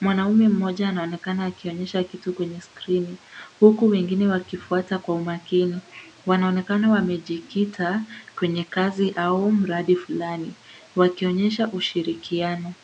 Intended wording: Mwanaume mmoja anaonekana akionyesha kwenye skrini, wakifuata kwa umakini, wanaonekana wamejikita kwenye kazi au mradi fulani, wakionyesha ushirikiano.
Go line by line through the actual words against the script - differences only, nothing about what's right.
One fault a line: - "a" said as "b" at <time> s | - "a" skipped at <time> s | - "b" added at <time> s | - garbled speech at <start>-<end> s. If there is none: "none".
- "kitu" added at 2.0 s
- "huku wengine" added at 3.6 s